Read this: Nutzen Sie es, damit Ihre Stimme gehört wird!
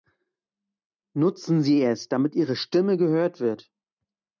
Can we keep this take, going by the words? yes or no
yes